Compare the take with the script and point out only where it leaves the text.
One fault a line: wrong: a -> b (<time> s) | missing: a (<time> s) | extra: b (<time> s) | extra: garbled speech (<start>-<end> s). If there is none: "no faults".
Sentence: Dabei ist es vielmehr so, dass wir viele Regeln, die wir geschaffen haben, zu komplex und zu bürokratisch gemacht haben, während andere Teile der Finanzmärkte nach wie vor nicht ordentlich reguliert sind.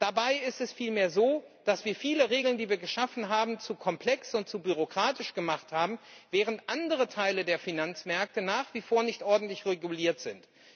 no faults